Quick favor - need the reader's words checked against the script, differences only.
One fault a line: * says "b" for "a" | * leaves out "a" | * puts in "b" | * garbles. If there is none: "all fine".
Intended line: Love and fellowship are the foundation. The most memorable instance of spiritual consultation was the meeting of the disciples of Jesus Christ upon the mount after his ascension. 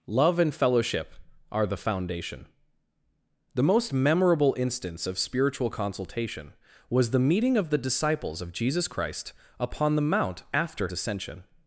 * leaves out "his"